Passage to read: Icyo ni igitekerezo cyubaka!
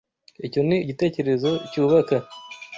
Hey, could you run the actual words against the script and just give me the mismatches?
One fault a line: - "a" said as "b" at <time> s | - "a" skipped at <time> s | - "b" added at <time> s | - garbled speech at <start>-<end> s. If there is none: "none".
none